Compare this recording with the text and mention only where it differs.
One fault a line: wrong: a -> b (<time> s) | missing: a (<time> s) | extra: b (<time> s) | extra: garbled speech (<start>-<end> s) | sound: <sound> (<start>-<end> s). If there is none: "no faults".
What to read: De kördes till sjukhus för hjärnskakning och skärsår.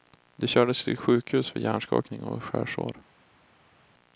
no faults